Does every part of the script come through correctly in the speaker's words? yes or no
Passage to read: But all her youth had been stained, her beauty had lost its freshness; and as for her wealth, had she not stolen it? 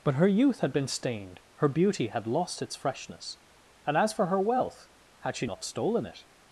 no